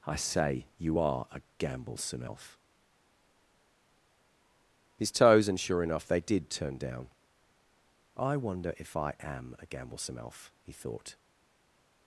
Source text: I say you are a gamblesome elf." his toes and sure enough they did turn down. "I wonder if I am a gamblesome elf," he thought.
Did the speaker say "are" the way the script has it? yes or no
yes